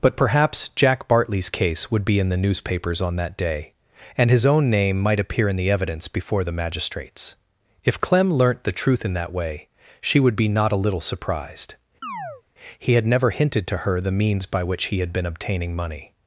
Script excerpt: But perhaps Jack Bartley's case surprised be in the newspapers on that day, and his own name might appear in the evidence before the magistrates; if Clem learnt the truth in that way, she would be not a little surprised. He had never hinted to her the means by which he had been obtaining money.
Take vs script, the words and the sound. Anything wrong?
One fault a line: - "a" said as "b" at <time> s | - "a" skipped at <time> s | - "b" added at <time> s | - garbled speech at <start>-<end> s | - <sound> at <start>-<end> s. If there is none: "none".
- "surprised" said as "would" at 1.9 s
- chirp at 12.0-12.4 s